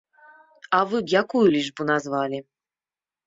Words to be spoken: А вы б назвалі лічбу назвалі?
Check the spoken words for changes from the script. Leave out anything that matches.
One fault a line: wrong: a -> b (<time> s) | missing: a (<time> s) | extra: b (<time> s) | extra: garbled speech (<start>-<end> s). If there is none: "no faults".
wrong: назвалі -> якую (1.2 s)